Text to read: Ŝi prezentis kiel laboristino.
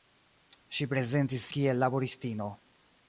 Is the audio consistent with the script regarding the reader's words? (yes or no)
yes